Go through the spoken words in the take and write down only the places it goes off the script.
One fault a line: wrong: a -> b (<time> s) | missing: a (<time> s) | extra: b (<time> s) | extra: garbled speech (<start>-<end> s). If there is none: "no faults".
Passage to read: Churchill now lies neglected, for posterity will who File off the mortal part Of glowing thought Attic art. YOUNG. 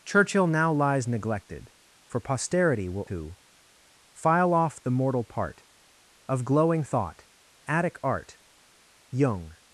no faults